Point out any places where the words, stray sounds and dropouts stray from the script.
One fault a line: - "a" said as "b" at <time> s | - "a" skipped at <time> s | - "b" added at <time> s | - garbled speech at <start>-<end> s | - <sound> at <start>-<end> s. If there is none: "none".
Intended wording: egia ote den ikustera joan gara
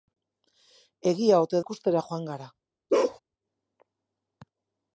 - "den" skipped at 1.6 s
- bark at 2.9-3.2 s